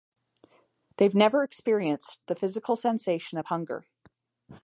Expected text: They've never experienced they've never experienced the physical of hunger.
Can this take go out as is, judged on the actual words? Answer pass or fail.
fail